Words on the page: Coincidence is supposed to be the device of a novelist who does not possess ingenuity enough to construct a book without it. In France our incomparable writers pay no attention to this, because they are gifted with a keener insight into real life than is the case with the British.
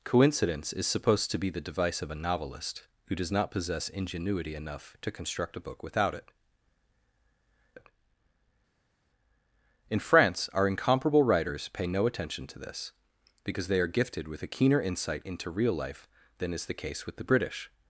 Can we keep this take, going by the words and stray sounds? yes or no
no